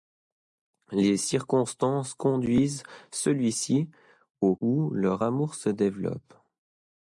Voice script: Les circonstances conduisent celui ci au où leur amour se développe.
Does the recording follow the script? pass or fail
pass